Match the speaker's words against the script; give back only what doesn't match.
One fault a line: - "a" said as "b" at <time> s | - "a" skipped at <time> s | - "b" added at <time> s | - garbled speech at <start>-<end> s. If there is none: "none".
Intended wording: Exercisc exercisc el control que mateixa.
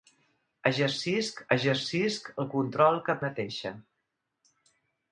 none